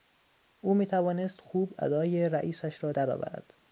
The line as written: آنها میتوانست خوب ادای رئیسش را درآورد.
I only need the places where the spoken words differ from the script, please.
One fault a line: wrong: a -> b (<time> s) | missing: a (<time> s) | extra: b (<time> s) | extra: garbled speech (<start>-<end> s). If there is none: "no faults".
wrong: آنها -> او (0.6 s)